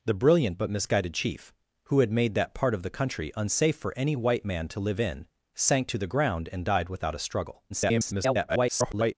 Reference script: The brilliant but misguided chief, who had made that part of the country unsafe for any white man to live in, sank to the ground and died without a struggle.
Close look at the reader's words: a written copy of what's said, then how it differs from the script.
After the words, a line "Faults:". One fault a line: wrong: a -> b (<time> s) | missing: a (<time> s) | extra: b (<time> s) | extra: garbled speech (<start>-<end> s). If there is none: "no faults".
The brilliant but misguided chief, who had made that part of the country unsafe for any white man to live in, sank to the ground and died without a struggle. [garbled]
Faults:
extra: garbled speech (7.7-9.1 s)